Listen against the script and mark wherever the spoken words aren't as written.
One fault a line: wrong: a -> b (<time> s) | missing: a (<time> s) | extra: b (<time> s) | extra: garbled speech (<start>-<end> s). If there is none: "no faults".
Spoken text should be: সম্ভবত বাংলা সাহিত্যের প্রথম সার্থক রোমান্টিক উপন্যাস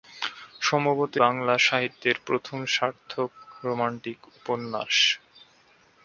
no faults